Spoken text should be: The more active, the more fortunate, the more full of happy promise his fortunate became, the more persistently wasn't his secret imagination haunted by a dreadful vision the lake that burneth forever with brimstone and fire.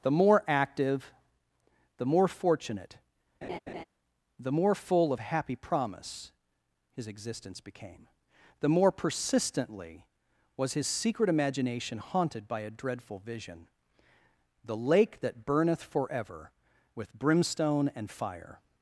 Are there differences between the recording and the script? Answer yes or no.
yes